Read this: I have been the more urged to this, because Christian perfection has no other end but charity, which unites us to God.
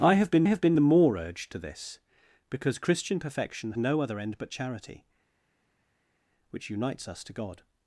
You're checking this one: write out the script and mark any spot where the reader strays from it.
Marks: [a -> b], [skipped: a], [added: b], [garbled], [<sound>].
I have been [added: have been] the more urged to this, because Christian perfection [skipped: has] no other end but charity, which unites us to God.